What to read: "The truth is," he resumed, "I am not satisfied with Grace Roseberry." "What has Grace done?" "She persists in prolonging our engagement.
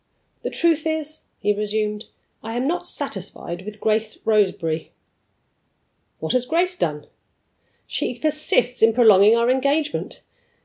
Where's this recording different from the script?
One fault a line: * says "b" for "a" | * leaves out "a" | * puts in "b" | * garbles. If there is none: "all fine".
all fine